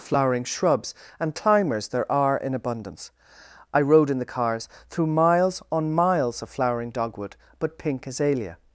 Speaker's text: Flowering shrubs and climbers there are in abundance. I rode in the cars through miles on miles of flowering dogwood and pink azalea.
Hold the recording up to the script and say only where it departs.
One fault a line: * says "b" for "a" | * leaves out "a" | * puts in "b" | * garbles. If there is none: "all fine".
* says "but" for "and"